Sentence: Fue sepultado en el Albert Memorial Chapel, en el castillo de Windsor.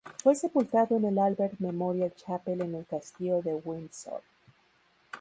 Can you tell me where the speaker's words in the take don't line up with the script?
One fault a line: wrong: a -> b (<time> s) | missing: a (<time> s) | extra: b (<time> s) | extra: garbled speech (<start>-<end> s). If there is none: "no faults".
no faults